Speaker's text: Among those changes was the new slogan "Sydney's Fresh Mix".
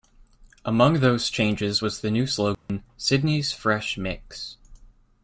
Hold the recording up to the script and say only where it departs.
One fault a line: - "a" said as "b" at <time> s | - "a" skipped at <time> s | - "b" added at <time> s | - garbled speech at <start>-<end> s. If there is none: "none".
none